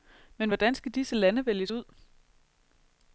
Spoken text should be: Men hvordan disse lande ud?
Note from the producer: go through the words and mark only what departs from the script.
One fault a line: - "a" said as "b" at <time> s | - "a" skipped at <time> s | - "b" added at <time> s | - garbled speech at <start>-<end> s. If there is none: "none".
- "skal" added at 0.7 s
- "vælges" added at 1.4 s